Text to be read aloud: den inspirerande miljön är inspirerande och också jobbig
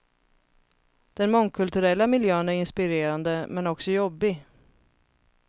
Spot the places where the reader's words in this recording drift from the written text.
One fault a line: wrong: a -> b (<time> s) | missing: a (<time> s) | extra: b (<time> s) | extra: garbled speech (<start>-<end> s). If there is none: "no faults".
wrong: inspirerande -> mångkulturella (1.3 s)
wrong: och -> men (3.5 s)